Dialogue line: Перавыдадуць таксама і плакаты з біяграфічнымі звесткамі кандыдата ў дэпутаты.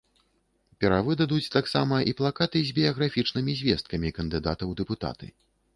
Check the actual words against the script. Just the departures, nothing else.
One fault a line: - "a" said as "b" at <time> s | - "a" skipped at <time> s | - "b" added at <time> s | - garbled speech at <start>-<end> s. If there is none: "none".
none